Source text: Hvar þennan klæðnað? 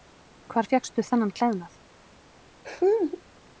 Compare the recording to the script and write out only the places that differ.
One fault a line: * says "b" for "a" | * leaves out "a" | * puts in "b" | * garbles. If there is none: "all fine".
* puts in "fékkstu"